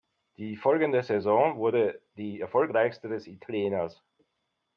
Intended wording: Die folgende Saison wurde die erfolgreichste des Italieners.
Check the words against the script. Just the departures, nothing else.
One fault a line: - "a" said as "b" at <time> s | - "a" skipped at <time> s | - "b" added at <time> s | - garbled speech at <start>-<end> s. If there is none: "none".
none